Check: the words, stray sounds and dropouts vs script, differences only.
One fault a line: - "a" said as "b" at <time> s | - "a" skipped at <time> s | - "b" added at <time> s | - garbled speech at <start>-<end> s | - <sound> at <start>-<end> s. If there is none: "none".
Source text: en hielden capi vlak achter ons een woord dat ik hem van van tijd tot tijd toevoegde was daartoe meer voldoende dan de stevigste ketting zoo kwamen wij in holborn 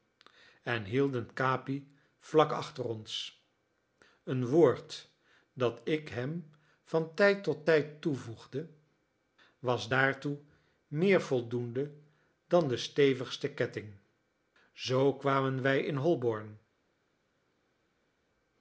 - "van" skipped at 7.1 s